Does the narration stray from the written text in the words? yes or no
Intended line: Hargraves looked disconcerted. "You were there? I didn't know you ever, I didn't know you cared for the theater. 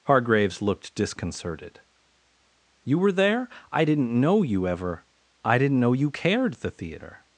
yes